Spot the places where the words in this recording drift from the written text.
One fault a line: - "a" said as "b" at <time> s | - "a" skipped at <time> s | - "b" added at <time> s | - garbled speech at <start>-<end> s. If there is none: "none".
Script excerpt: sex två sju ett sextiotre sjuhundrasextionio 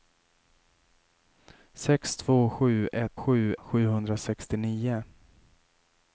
- "sextiotre" said as "sju" at 3.2 s